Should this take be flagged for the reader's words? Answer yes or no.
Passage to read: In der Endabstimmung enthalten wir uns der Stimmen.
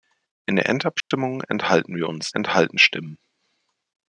yes